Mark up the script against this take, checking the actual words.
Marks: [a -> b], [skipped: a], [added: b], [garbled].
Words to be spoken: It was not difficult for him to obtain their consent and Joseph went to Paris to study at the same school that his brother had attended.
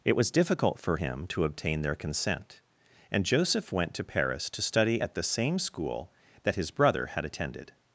It was [skipped: not] difficult for him to obtain their consent and Joseph went to Paris to study at the same school that his brother had attended.